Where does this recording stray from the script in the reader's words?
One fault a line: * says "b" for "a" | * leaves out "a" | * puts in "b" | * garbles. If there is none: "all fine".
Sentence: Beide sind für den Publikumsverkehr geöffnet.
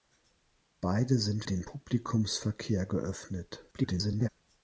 * leaves out "für"
* garbles